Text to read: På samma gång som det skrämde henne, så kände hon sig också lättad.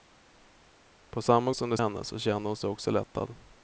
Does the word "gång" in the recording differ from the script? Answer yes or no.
yes